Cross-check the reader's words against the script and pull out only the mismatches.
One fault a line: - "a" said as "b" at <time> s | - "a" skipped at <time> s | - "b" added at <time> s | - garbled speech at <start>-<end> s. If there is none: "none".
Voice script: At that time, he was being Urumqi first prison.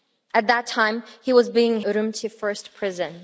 none